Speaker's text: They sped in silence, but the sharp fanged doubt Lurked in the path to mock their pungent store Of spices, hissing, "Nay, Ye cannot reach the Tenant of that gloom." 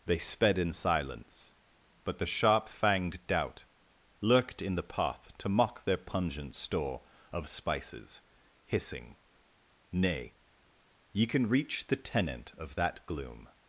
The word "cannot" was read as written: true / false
false